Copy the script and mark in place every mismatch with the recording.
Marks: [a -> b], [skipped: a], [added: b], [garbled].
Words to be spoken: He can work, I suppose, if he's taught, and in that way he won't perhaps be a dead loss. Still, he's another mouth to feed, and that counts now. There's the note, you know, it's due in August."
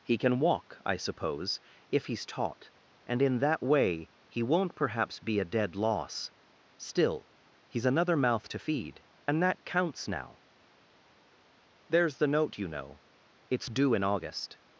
He can [work, -> walk] I suppose, if he's taught, and in that way he won't perhaps be a dead loss. Still, he's another mouth to feed, and that counts now. There's the note, you know, it's due in August."